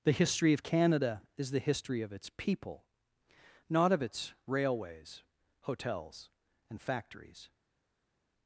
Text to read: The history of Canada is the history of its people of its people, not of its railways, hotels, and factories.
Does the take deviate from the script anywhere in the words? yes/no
yes